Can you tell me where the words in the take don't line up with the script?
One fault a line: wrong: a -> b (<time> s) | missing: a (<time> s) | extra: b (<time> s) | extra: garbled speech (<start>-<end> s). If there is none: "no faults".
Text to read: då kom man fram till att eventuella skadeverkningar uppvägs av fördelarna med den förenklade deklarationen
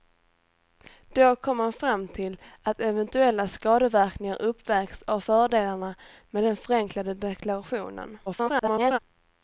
extra: garbled speech (8.3-9.0 s)